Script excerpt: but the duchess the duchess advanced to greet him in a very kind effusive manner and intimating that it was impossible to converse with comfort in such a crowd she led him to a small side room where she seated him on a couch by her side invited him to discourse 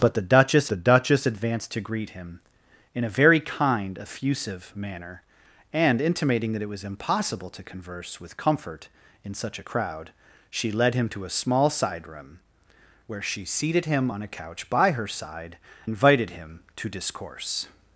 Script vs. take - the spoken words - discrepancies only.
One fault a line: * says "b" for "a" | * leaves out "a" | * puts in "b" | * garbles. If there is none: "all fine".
all fine